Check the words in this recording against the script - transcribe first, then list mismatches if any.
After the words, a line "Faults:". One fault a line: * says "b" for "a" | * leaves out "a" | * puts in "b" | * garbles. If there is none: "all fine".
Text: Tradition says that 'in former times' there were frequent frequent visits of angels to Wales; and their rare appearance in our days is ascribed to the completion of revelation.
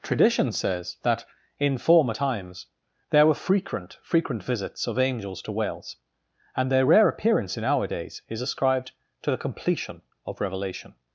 Tradition says that 'in former times' there were frequent frequent visits of angels to Wales; and their rare appearance in our days is ascribed to the completion of revelation.
Faults:
all fine